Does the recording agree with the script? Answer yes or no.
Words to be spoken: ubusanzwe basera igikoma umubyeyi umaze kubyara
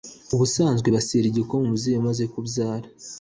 yes